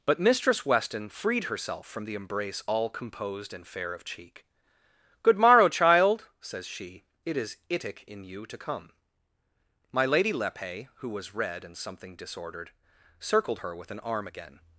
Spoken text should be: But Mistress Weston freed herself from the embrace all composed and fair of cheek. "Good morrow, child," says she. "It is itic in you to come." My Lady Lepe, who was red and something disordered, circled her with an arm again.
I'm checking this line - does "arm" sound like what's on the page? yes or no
yes